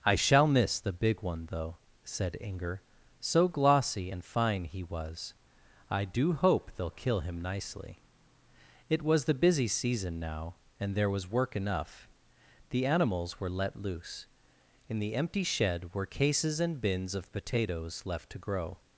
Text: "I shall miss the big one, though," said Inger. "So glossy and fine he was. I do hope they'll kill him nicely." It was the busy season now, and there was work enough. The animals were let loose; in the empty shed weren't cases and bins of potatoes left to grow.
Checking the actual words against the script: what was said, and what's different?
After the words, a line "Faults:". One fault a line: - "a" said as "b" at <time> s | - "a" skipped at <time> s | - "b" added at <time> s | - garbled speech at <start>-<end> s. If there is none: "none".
"I shall miss the big one, though," said Inger. "So glossy and fine he was. I do hope they'll kill him nicely." It was the busy season now, and there was work enough. The animals were let loose; in the empty shed were cases and bins of potatoes left to grow.
Faults:
- "weren't" said as "were" at 15.9 s